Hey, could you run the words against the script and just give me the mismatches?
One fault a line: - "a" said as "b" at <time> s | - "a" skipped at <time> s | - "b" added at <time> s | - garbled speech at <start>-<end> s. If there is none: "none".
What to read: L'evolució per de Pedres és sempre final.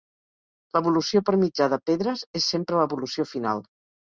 - "mitjà" added at 1.4 s
- "l'evolució" added at 2.8 s